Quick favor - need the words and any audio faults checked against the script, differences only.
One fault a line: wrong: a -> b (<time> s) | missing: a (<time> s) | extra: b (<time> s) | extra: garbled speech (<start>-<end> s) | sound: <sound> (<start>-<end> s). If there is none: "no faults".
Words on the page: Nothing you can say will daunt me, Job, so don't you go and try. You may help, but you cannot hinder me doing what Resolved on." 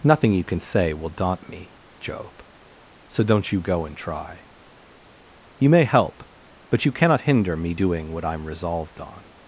extra: I'm (8.2 s)